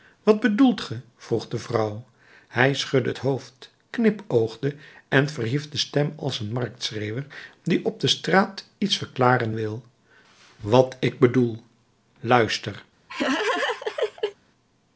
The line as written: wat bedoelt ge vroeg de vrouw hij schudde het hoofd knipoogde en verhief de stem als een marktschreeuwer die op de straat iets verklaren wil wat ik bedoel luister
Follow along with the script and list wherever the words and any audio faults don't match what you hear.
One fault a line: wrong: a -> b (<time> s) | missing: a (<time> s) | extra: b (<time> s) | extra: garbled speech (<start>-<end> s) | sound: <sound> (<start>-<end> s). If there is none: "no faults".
sound: laugh (13.1-14.4 s)